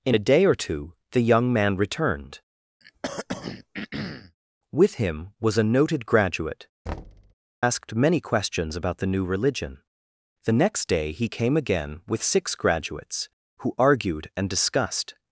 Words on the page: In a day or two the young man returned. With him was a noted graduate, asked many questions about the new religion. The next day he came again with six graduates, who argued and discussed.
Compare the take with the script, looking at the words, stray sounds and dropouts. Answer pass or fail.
fail